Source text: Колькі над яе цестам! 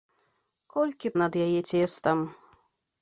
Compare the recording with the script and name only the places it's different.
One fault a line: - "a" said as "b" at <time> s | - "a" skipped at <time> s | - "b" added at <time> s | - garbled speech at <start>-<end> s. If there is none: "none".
none